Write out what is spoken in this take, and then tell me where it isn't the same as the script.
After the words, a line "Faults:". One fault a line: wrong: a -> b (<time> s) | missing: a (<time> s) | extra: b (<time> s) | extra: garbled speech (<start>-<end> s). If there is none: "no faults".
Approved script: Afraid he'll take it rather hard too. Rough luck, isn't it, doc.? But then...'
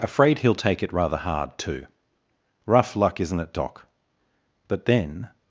Afraid he'll take it rather hard too. Rough luck, isn't it, doc.? But then...'
Faults:
no faults